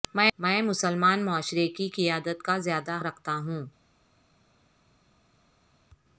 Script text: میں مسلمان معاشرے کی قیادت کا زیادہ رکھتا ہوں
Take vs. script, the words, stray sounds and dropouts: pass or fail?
pass